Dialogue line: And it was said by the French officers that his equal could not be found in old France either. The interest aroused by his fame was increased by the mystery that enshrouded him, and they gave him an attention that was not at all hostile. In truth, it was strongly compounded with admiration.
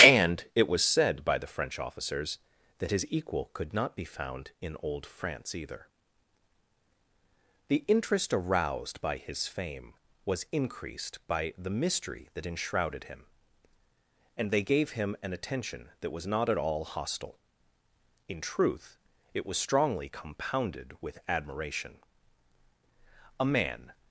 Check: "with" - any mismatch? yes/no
no